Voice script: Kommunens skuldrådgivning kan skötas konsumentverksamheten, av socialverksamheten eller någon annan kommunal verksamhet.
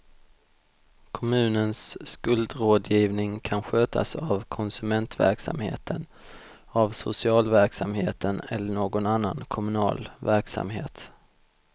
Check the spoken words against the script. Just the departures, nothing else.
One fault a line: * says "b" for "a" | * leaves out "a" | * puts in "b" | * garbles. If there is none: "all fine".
* puts in "av"